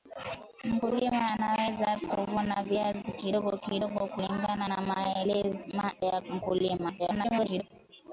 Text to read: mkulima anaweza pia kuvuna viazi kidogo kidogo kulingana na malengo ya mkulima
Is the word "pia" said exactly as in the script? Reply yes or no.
no